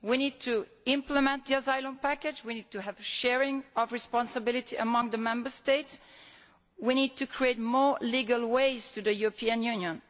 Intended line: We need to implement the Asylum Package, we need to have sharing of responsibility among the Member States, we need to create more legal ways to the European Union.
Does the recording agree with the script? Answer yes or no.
yes